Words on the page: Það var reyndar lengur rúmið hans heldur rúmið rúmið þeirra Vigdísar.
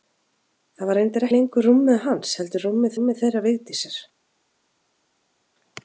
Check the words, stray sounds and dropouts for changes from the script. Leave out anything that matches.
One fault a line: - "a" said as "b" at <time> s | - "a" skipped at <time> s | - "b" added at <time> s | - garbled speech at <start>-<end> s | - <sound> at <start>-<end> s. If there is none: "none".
none